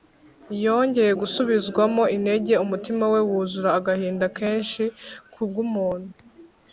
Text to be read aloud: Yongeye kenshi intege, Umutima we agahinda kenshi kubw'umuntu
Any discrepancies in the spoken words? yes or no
yes